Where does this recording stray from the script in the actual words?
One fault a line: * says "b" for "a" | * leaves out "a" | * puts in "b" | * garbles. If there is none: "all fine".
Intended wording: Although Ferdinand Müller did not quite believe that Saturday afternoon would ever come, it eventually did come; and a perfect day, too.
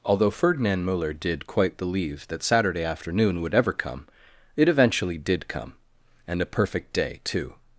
* leaves out "not"